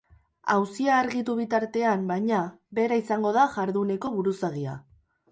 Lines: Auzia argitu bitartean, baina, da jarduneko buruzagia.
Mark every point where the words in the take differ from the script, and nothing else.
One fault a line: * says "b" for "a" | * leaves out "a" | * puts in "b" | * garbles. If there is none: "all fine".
* puts in "bera izango"